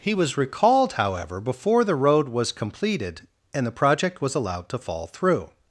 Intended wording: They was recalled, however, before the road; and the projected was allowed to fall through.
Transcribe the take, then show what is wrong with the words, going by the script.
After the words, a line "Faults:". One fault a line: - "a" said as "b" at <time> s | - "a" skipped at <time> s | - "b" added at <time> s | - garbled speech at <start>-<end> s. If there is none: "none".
He was recalled, however, before the road was completed; and the project was allowed to fall through.
Faults:
- "They" said as "He" at 0.0 s
- "was completed" added at 2.3 s
- "projected" said as "project" at 3.8 s